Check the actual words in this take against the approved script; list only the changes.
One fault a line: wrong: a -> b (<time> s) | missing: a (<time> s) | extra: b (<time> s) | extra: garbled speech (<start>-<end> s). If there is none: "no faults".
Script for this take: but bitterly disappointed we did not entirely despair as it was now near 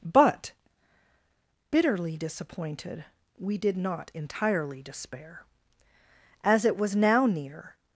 no faults